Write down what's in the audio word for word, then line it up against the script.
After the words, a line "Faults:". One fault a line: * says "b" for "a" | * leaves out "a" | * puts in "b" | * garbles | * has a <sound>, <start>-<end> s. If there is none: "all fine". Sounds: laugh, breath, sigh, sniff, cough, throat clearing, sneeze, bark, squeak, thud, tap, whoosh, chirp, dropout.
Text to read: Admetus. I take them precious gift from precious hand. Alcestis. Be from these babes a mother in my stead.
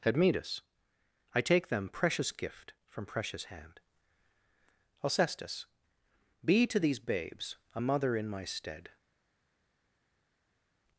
Admetus. I take them precious gift from precious hand. Alcestis. Be to these babes a mother in my stead.
Faults:
* says "to" for "from"